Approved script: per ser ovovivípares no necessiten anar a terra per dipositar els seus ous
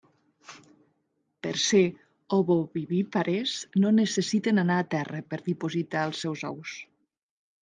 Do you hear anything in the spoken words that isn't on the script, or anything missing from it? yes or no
no